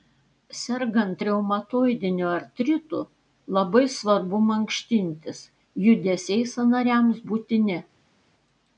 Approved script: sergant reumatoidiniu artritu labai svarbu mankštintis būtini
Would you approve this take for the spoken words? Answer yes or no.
no